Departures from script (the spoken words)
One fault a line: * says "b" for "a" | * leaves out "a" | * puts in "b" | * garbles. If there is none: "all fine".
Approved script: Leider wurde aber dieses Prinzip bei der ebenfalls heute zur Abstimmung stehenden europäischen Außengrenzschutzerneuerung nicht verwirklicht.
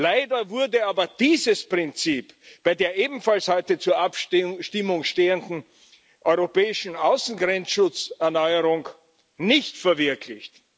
all fine